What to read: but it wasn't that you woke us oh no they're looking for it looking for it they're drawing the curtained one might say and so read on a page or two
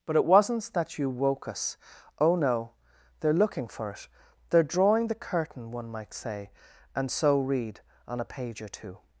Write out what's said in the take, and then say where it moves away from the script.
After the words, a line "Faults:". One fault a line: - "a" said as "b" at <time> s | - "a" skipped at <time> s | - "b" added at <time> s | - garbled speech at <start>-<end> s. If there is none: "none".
but it wasn't that you woke us oh no they're looking for it they're drawing the curtain one might say and so read on a page or two
Faults:
- "looking for it" skipped at 4.1 s
- "curtained" said as "curtain" at 5.2 s